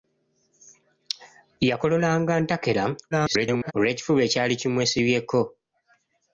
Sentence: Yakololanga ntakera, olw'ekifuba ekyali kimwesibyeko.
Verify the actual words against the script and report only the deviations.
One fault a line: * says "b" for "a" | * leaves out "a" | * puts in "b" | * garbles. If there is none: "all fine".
* garbles